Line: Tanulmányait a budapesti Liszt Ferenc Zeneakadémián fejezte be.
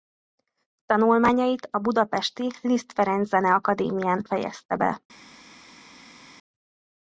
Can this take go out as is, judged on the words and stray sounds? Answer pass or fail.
pass